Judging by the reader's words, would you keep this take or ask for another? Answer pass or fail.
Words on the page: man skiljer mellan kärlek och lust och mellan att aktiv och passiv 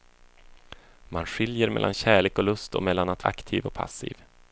pass